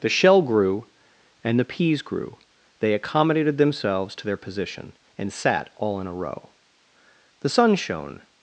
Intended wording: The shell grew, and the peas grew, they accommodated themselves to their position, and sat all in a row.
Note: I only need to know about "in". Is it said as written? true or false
true